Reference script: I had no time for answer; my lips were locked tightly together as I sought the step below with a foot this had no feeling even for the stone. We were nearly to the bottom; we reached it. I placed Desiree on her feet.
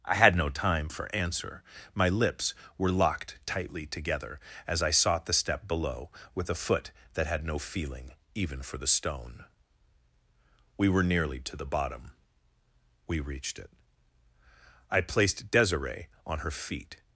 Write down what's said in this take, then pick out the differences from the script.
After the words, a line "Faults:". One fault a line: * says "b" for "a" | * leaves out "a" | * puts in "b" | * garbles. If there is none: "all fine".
I had no time for answer; my lips were locked tightly together as I sought the step below with a foot that had no feeling even for the stone. We were nearly to the bottom; we reached it. I placed Desiree on her feet.
Faults:
* says "that" for "this"